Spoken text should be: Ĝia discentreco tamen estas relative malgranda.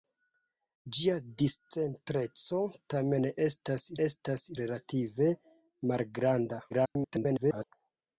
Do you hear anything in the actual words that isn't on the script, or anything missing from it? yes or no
yes